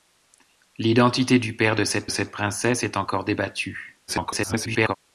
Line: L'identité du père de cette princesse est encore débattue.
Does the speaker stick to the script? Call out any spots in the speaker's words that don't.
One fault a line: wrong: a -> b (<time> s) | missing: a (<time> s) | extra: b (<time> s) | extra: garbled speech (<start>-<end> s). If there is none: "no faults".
extra: cette (2.1 s)
extra: garbled speech (4.1-5.0 s)